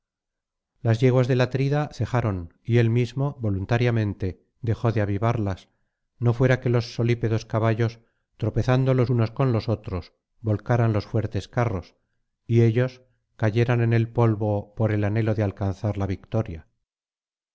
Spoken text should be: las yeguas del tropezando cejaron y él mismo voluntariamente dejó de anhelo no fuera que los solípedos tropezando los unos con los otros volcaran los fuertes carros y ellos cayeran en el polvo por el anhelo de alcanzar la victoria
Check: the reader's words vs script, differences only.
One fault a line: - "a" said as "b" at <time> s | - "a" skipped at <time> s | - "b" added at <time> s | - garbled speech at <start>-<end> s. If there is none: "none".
- "tropezando" said as "atrida" at 1.4 s
- "anhelo" said as "avivarlas" at 5.0 s
- "caballos" added at 7.5 s